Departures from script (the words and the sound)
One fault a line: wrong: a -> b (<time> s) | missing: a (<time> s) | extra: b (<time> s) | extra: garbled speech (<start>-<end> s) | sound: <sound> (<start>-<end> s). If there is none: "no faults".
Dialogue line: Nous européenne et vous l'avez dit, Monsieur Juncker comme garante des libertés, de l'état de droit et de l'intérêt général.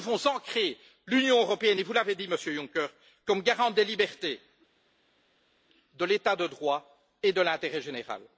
extra: devons ancrer l'Union (0.2 s)